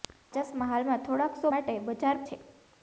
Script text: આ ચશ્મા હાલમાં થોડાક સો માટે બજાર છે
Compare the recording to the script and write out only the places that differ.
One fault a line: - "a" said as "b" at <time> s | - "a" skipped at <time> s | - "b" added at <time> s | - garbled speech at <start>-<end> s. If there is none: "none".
none